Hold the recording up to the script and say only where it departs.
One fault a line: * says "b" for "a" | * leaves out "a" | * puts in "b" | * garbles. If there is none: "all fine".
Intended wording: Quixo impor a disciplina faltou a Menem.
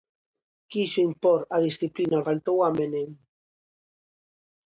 all fine